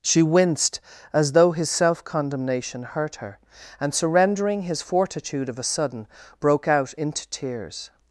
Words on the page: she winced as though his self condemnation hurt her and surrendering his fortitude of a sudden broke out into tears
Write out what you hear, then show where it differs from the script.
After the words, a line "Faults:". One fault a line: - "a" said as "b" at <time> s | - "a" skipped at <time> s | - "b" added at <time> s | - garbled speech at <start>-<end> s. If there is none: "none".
she winced as though his self condemnation hurt her and surrendering his fortitude of a sudden broke out into tears
Faults:
none